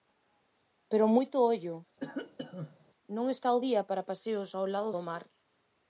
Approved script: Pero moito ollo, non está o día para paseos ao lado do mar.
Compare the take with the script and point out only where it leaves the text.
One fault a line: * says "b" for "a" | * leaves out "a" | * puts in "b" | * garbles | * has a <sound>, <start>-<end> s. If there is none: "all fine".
* has a cough, 2.0-2.9 s